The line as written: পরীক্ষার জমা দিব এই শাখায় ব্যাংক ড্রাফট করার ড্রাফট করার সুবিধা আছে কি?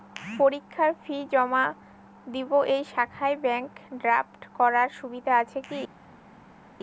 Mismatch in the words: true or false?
true